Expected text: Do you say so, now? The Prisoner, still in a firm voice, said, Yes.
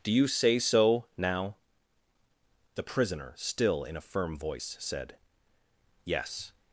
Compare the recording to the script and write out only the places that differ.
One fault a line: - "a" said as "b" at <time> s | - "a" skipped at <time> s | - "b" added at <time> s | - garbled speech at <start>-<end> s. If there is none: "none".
none